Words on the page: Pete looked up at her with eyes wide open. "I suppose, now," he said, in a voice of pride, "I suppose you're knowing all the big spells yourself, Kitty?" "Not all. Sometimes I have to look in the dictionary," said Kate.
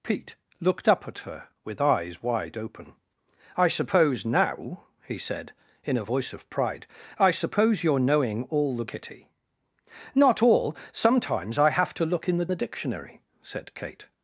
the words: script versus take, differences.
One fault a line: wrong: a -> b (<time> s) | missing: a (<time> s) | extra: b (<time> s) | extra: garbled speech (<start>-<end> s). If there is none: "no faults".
missing: big spells yourself (8.8 s)
extra: the (12.5 s)